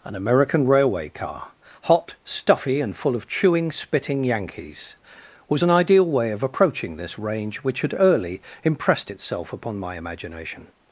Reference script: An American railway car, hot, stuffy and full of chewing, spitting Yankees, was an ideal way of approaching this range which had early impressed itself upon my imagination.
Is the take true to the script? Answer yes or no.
yes